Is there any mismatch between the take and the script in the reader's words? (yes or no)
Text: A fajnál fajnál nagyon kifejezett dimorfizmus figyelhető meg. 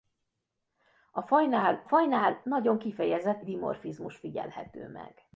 no